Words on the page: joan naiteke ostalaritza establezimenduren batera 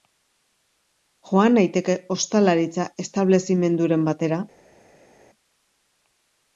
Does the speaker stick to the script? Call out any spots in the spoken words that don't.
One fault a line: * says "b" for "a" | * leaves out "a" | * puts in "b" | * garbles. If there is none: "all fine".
all fine